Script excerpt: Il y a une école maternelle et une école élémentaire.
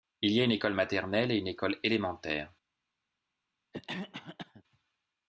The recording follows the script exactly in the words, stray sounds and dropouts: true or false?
false